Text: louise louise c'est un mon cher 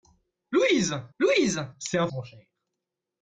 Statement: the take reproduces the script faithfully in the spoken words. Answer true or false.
true